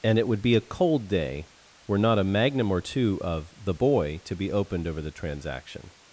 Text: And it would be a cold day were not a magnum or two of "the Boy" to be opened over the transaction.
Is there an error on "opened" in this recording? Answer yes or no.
no